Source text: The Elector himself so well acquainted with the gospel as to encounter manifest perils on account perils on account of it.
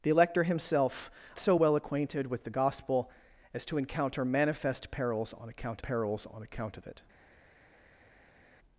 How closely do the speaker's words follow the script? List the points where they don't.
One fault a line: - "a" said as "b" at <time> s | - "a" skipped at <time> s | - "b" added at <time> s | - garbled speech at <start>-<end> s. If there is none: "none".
none